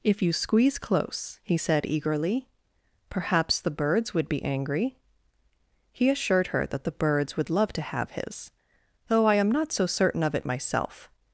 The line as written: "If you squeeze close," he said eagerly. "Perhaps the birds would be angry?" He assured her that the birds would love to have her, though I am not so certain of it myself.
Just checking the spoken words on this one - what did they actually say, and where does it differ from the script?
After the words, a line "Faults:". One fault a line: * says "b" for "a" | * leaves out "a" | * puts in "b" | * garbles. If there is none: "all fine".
"If you squeeze close," he said eagerly. "Perhaps the birds would be angry?" He assured her that the birds would love to have his, though I am not so certain of it myself.
Faults:
* says "his" for "her"